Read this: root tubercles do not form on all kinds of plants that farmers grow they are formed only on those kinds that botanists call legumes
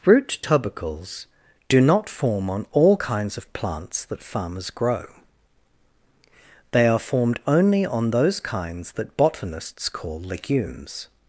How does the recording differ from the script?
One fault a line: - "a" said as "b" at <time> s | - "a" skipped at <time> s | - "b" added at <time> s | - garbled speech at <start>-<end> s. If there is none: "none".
none